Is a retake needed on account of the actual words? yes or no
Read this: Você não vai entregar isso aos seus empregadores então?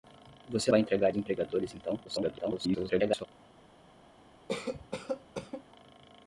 yes